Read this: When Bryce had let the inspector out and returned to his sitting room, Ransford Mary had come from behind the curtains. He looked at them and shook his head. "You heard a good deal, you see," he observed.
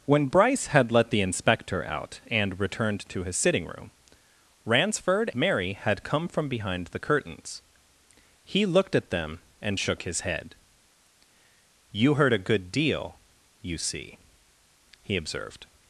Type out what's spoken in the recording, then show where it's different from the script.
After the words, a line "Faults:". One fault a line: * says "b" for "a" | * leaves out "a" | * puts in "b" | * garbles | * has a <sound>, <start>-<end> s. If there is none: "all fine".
When Bryce had let the inspector out and returned to his sitting room, Ransford Mary had come from behind the curtains. He looked at them and shook his head. "You heard a good deal, you see," he observed.
Faults:
all fine